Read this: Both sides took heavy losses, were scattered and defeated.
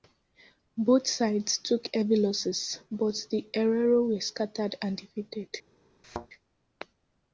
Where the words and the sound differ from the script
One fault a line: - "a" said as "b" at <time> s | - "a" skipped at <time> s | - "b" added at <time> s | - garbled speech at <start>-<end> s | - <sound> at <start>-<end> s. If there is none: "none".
- "but the Herero" added at 2.9 s
- thud at 6.0-6.3 s